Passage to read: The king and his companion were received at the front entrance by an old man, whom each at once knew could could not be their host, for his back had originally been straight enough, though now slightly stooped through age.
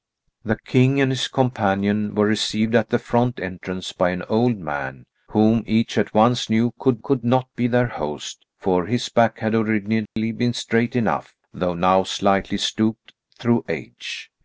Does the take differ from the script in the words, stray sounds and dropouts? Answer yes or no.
yes